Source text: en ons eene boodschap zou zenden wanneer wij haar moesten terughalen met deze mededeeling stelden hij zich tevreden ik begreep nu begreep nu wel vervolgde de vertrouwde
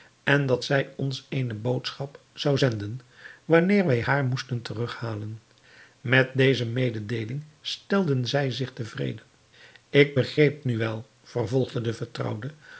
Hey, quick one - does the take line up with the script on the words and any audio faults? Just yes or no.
no